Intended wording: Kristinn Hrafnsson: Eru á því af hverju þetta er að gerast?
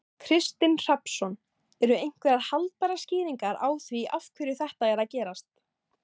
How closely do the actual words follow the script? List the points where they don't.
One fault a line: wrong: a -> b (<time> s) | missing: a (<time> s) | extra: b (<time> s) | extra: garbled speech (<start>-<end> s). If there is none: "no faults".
extra: einhverjar haldbærar skýringar (2.0 s)